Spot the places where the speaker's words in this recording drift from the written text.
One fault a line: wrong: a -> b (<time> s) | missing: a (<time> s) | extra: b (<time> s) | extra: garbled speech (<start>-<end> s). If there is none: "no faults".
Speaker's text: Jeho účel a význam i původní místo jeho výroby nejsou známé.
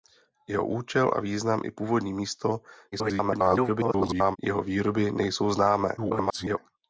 extra: garbled speech (2.9-4.4 s)
extra: garbled speech (6.0-6.6 s)